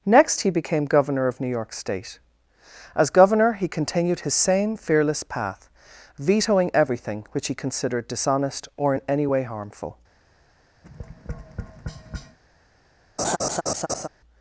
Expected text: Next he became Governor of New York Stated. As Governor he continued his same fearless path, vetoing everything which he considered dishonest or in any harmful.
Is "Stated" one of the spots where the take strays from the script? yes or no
yes